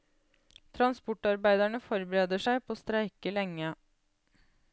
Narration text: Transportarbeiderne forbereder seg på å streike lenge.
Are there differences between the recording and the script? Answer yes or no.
no